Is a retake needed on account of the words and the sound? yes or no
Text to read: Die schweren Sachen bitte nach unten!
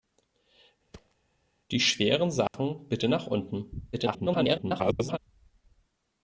yes